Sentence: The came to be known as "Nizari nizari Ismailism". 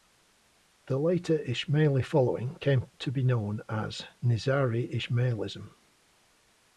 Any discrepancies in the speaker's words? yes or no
yes